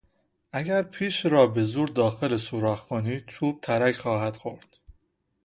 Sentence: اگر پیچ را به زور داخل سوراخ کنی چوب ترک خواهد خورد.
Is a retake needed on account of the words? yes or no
no